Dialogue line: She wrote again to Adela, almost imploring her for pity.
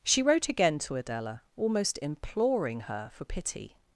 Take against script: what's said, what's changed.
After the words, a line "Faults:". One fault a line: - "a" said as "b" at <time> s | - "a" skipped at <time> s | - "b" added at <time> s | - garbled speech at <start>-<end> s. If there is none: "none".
She wrote again to Adela, almost imploring her for pity.
Faults:
none